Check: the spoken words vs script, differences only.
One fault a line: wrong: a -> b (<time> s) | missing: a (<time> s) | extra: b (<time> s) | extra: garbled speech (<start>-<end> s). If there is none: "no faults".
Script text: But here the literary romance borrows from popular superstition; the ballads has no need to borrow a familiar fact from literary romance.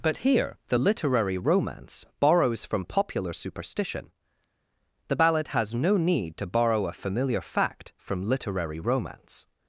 wrong: ballads -> ballad (5.1 s)